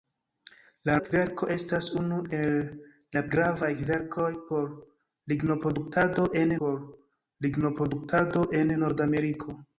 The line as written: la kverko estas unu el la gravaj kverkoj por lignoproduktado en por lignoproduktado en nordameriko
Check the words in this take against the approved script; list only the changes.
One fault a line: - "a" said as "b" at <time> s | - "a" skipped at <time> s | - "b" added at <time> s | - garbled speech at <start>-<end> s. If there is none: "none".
none